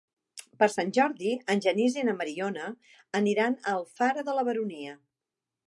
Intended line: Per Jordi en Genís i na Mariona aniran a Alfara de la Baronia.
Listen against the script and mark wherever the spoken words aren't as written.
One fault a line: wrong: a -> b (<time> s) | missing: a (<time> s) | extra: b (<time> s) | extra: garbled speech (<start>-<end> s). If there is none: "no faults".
extra: Sant (0.7 s)